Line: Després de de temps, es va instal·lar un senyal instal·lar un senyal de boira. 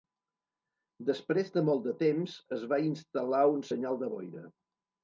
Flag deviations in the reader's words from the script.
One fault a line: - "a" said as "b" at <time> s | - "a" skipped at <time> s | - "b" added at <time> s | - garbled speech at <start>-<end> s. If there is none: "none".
- "molt" added at 1.7 s
- "instal·lar un senyal" skipped at 4.0 s